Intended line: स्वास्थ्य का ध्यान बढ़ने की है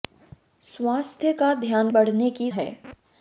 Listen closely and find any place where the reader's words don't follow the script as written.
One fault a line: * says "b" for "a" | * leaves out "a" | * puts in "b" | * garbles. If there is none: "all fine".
all fine